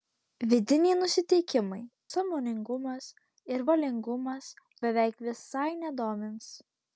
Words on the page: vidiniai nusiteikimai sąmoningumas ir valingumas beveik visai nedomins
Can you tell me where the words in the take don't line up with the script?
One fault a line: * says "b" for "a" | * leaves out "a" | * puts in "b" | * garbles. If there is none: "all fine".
all fine